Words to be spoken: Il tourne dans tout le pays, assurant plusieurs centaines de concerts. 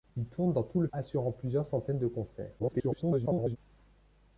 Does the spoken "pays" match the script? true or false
false